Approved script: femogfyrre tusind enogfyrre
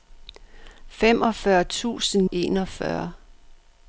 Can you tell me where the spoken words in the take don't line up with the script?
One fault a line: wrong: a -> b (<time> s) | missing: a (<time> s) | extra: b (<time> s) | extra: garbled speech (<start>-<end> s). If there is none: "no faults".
no faults